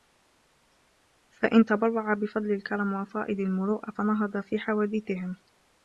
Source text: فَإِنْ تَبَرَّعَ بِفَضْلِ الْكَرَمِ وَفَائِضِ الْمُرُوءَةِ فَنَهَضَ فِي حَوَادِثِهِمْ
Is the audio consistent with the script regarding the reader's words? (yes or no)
yes